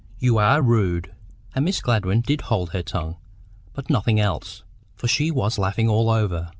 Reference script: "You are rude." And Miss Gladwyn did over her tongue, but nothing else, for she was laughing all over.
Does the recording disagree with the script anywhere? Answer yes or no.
yes